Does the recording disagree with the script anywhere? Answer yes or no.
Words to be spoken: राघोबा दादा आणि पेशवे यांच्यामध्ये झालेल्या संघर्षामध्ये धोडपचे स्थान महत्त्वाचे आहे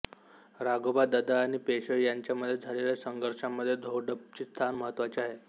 no